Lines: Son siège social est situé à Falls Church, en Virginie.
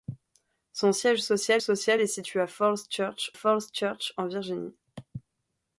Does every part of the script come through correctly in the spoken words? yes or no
no